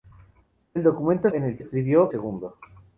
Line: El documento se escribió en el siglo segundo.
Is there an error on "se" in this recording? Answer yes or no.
yes